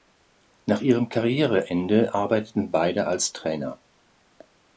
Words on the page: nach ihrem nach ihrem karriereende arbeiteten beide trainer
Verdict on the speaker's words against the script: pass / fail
fail